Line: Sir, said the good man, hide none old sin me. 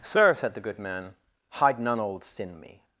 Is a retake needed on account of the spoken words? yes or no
no